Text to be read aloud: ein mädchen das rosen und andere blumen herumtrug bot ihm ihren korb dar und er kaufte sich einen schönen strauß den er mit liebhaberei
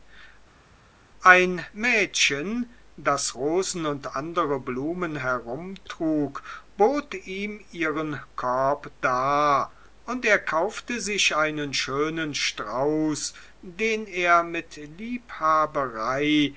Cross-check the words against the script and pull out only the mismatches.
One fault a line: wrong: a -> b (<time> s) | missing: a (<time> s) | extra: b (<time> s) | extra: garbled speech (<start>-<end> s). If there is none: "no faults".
no faults